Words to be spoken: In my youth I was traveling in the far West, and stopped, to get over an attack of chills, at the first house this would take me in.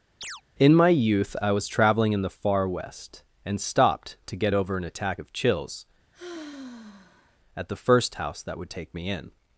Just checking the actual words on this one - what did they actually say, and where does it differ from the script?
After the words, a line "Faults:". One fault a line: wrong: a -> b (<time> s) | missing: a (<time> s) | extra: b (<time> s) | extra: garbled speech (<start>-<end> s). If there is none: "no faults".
In my youth I was traveling in the far West, and stopped, to get over an attack of chills, at the first house that would take me in.
Faults:
wrong: this -> that (8.4 s)